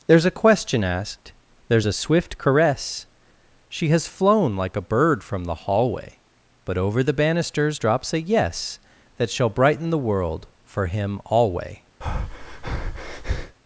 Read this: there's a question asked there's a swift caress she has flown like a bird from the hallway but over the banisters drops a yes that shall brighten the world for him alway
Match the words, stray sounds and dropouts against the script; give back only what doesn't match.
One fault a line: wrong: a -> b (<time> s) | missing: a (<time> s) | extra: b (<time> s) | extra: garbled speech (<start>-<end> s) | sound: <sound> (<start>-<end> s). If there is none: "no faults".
sound: breath (12.0-13.6 s)